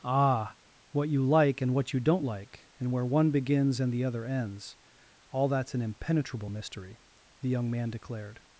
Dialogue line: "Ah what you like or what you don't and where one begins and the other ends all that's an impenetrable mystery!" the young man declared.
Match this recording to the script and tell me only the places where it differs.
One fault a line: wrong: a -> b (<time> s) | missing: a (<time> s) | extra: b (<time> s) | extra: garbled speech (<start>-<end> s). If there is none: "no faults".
wrong: or -> and (1.6 s)
extra: like (2.2 s)